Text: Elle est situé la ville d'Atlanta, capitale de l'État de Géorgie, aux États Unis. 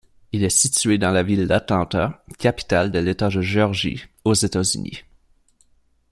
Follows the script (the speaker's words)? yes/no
no